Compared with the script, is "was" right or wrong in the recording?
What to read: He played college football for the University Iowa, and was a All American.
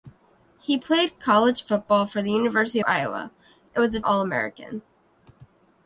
right